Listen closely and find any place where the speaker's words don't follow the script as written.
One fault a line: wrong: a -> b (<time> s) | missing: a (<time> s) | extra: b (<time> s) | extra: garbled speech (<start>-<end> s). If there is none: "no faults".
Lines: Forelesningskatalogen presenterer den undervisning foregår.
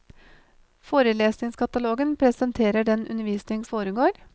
no faults